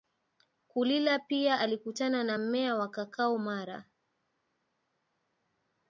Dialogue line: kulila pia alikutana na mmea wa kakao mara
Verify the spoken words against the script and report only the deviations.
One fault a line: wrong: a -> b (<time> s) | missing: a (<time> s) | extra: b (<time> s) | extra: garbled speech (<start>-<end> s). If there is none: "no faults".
no faults